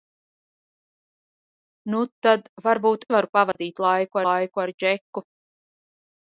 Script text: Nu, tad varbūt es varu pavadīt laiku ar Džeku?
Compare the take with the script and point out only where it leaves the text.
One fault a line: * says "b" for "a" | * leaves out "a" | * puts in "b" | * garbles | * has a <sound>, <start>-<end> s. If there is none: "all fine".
* leaves out "es"
* has a dropout, 3.5-3.6 s
* puts in "laiku"